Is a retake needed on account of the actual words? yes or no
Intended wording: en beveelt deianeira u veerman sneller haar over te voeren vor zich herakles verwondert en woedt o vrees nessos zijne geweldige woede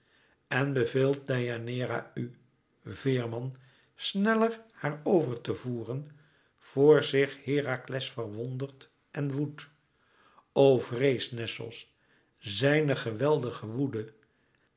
no